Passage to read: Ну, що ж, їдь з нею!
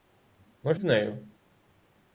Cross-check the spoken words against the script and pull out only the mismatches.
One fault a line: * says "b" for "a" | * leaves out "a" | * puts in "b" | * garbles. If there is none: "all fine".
* leaves out "що ж їдь"